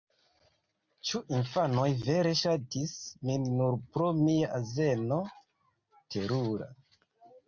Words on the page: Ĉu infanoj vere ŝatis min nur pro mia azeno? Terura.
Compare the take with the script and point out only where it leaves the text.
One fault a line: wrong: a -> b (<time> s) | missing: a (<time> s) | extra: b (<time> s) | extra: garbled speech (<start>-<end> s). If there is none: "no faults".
no faults